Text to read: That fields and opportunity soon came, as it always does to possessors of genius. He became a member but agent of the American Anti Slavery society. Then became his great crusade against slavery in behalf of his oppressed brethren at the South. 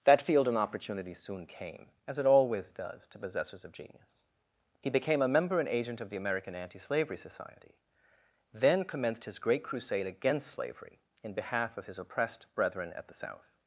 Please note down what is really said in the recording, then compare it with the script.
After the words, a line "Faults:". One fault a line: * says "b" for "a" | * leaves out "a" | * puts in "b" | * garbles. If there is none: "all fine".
That field and opportunity soon came, as it always does to possessors of genius. He became a member and agent of the American Anti Slavery society. Then commenced his great crusade against slavery in behalf of his oppressed brethren at the South.
Faults:
* says "field" for "fields"
* says "and" for "but"
* says "commenced" for "became"